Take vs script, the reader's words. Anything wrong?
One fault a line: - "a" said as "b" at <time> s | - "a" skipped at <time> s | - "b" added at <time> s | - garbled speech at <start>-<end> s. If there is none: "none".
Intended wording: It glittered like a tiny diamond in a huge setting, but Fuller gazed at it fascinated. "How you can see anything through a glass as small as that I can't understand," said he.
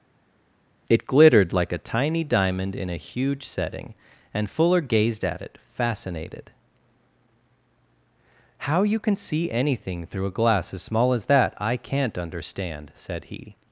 - "but" said as "and" at 4.3 s